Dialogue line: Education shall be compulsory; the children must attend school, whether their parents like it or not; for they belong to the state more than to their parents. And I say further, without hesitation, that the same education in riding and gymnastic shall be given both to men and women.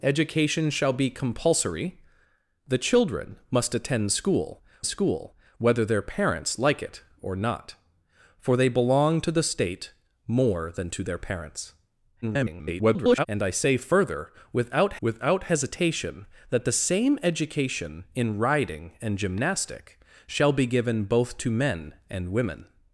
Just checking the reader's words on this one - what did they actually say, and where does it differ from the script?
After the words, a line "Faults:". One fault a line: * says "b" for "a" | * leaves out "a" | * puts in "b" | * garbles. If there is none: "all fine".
Education shall be compulsory; the children must attend school school, whether their parents like it or not; for they belong to the state more than to their parents. [garbled] And I say further, without without hesitation, that the same education in riding and gymnastic shall be given both to men and women.
Faults:
* puts in "school"
* garbles
* puts in "without"